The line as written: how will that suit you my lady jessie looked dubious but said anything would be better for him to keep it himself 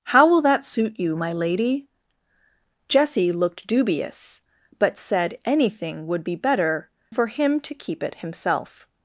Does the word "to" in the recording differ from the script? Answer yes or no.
no